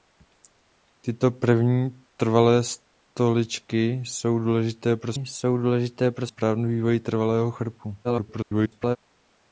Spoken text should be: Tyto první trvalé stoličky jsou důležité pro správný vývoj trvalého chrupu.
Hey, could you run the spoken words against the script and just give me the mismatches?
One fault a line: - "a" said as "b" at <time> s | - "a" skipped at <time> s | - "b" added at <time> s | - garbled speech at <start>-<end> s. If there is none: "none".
- "jsou důležité pro" added at 5.1 s
- garbled speech at 8.0-9.0 s